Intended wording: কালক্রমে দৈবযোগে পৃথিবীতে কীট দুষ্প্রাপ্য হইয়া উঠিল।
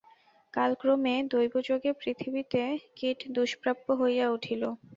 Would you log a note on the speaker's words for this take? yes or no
no